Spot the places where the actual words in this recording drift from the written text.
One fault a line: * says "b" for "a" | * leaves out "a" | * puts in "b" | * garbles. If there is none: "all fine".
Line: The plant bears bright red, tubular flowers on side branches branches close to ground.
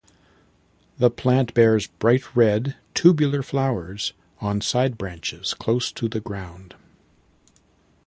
* leaves out "branches"
* puts in "the"